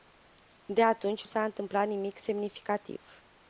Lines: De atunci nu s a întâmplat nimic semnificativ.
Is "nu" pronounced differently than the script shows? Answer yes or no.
yes